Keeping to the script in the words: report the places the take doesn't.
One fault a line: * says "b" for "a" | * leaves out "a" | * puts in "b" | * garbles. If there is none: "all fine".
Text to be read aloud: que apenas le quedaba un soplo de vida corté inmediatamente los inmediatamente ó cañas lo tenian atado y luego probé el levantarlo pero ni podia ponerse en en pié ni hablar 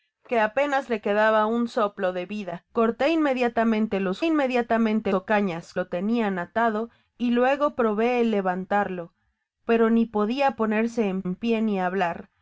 all fine